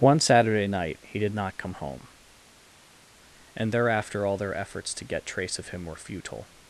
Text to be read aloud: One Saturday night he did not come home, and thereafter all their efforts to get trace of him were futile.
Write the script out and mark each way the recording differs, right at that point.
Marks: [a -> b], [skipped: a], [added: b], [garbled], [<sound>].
One Saturday night he did not come home, and thereafter all their efforts to get trace of him were futile.